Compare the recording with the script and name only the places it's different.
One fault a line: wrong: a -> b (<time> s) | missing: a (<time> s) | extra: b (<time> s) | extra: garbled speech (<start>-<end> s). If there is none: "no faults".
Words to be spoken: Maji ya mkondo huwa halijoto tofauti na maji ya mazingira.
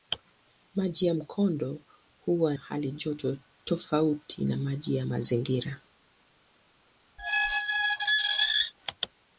no faults